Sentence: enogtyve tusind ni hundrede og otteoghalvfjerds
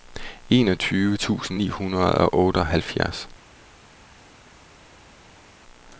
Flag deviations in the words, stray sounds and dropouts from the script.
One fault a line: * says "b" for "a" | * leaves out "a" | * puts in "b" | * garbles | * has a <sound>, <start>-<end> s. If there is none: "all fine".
all fine